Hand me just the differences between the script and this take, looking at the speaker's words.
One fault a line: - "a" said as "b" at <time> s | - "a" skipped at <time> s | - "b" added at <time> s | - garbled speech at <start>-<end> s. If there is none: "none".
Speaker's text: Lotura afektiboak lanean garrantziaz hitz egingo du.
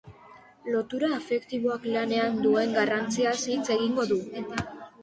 - "duen" added at 2.5 s